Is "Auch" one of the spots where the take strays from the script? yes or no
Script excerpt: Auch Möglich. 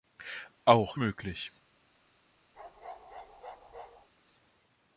no